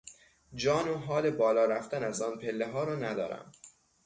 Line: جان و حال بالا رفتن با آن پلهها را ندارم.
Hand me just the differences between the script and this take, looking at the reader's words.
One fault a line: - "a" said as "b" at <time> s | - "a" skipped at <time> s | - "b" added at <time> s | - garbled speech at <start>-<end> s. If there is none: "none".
- "با" said as "از" at 2.0 s